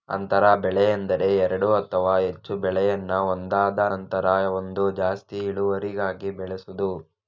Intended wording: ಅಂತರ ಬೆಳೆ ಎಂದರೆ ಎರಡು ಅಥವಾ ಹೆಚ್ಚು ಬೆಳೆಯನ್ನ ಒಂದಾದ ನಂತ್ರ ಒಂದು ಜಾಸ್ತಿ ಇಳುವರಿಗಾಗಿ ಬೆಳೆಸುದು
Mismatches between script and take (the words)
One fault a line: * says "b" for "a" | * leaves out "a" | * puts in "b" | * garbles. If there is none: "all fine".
all fine